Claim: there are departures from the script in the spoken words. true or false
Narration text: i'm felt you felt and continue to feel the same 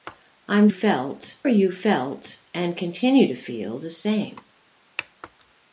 false